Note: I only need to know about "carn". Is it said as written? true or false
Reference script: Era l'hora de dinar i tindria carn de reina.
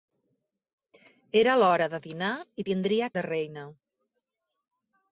false